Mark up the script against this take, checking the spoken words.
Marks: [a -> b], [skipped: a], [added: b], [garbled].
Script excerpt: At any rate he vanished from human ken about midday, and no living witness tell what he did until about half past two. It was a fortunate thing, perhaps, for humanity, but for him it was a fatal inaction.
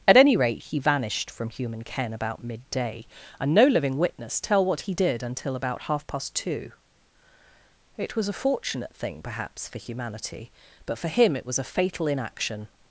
At any rate he vanished from human ken about midday, and no living witness tell what he did until about half past two. It was a fortunate thing, perhaps, for humanity, but for him it was a fatal inaction.